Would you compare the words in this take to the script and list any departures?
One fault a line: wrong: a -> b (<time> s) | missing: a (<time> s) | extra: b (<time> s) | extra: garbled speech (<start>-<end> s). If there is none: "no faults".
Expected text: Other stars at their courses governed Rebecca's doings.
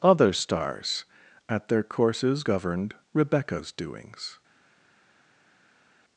no faults